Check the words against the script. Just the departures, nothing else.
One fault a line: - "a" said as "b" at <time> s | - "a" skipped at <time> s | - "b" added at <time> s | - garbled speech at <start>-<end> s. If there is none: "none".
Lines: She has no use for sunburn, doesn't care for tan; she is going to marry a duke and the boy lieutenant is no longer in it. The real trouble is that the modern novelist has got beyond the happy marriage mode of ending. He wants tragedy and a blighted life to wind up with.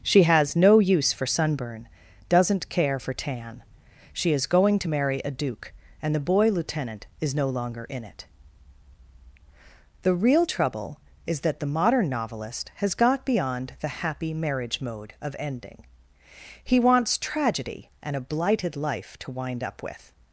none